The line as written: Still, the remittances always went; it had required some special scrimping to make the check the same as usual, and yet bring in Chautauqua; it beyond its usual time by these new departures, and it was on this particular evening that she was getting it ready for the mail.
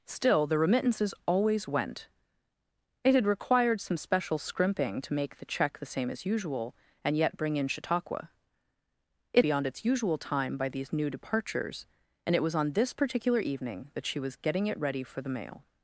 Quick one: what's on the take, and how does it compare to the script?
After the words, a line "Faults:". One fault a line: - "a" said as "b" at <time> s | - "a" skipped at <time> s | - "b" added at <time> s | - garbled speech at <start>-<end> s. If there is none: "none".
Still, the remittances always went; it had required some special scrimping to make the check the same as usual, and yet bring in Chautauqua; it beyond its usual time by these new departures, and it was on this particular evening that she was getting it ready for the mail.
Faults:
none